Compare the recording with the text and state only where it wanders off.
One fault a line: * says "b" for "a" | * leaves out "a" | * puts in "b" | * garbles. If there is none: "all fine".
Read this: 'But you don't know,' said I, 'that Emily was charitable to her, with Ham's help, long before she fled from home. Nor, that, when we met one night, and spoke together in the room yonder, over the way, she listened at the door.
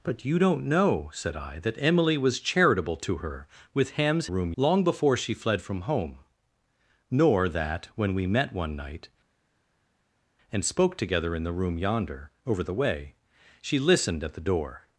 * says "room" for "help"